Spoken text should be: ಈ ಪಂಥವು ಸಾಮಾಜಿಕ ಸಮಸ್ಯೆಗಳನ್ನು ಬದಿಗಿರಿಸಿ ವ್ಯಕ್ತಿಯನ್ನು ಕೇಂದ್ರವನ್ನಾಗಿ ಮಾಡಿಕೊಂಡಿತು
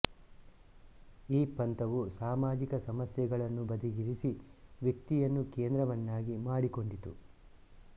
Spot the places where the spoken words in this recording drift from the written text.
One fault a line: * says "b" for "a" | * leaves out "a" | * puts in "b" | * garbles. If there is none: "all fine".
all fine